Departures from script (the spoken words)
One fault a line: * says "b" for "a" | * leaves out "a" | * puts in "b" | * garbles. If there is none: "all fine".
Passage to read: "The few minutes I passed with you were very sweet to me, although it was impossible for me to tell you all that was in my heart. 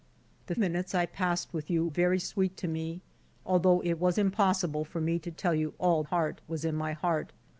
* leaves out "few"
* leaves out "were"
* says "heart" for "that"